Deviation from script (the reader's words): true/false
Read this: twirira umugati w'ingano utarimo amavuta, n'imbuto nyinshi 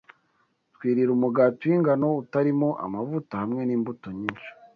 true